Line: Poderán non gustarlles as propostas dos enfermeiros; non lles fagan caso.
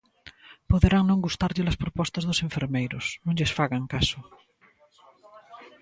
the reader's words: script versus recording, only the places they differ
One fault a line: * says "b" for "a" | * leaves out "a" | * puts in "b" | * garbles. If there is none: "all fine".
all fine